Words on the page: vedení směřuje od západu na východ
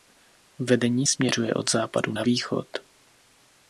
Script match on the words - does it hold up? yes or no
yes